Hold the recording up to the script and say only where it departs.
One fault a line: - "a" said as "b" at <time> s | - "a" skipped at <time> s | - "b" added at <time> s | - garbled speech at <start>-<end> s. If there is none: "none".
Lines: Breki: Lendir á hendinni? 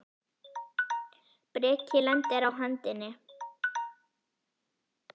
none